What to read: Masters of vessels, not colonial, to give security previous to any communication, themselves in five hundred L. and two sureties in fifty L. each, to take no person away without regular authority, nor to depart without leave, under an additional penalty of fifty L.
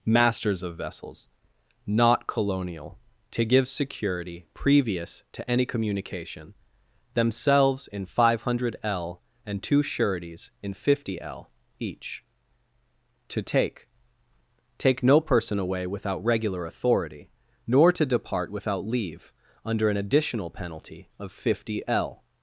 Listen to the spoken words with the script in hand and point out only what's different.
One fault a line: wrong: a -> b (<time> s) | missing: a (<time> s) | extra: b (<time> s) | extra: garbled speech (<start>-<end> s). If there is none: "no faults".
extra: take (14.8 s)